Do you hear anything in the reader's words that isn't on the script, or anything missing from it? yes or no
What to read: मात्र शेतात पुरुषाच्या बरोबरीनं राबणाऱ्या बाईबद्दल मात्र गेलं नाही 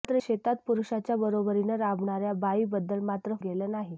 no